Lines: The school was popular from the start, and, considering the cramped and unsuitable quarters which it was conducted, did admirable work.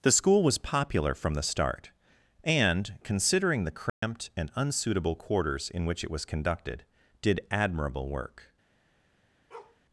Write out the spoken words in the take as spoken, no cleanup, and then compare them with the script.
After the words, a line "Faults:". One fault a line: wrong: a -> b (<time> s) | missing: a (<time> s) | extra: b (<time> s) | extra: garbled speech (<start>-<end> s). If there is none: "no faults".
The school was popular from the start, and, considering the cramped and unsuitable quarters in which it was conducted, did admirable work.
Faults:
extra: in (5.7 s)